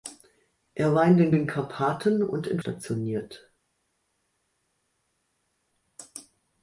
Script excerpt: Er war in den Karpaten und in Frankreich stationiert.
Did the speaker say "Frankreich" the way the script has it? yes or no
no